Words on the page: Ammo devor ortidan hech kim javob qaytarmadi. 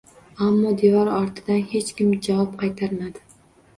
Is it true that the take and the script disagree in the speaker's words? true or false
false